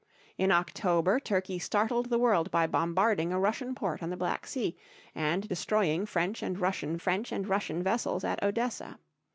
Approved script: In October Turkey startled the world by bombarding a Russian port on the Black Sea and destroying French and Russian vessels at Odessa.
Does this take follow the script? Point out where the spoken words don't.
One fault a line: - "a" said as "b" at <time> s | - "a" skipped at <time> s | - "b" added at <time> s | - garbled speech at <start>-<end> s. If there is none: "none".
- "French and Russian" added at 7.0 s